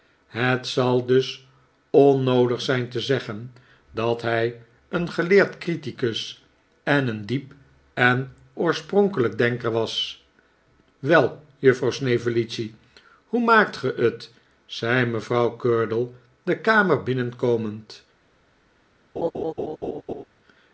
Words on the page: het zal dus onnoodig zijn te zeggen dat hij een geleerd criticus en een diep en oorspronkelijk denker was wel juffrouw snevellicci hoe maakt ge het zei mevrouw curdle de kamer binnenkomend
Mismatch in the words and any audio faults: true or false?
true